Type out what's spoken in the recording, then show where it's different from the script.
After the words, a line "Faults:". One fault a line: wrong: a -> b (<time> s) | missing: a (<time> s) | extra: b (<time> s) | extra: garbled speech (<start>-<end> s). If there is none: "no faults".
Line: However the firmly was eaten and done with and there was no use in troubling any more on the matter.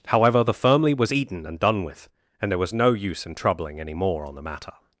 However the firmly was eaten and done with and there was no use in troubling any more on the matter.
Faults:
no faults